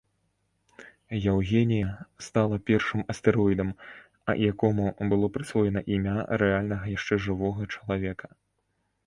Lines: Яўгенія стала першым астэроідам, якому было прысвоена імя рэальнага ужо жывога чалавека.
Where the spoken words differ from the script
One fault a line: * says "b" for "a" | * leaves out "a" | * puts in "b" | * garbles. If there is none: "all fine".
* says "яшчэ" for "ужо"